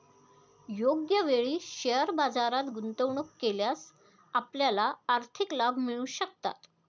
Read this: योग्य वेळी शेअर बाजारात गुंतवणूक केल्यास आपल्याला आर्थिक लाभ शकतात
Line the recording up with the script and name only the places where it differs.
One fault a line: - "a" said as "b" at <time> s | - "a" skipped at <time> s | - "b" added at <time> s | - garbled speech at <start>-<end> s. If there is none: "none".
- "मिळू" added at 5.8 s